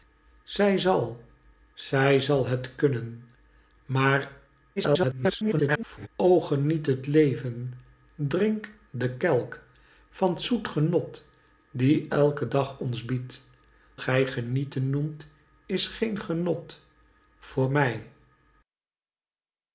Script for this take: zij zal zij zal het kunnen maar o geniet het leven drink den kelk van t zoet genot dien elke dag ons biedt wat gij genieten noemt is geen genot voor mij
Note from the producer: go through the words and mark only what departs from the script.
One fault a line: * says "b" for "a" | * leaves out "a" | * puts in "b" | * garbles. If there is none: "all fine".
* garbles
* leaves out "wat"